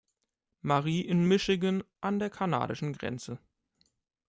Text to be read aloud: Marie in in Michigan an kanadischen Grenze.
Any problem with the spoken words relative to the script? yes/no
yes